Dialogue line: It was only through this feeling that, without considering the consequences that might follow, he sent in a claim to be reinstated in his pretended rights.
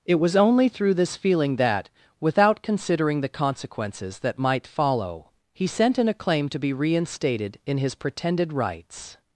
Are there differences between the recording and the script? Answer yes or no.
no